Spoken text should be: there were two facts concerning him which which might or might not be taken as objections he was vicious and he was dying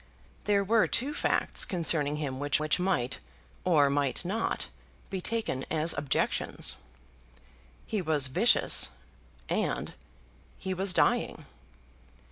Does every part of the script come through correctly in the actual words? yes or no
yes